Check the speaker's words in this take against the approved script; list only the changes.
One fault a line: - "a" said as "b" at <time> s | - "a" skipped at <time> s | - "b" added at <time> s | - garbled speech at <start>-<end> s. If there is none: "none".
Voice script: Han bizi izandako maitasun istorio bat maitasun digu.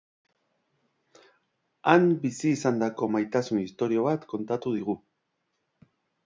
- "maitasun" said as "kontatu" at 4.3 s